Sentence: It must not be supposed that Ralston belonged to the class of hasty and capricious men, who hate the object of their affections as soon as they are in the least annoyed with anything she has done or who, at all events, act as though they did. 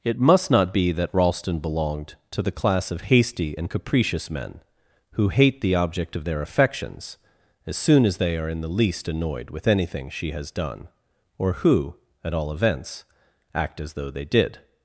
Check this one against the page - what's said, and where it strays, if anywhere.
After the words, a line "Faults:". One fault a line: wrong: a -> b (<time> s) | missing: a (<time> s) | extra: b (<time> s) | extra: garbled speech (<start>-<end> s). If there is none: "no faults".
It must not be that Ralston belonged to the class of hasty and capricious men, who hate the object of their affections as soon as they are in the least annoyed with anything she has done or who, at all events, act as though they did.
Faults:
missing: supposed (0.9 s)